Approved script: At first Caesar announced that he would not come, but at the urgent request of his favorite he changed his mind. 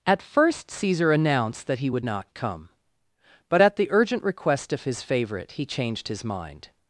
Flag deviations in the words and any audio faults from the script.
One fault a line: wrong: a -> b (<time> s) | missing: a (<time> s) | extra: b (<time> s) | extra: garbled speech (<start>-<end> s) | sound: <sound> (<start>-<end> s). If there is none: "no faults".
no faults